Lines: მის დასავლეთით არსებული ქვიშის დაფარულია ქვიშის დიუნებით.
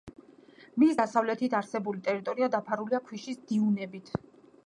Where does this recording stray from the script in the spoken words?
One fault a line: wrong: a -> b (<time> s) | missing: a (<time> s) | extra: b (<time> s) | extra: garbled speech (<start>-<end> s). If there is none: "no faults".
wrong: ქვიშის -> ტერიტორია (2.1 s)